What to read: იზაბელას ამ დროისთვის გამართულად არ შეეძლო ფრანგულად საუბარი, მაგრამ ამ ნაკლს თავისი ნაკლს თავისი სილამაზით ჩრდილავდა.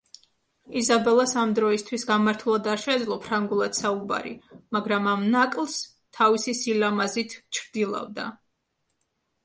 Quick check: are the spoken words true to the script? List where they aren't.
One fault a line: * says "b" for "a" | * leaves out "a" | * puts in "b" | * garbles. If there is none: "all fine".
* leaves out "ნაკლს თავისი"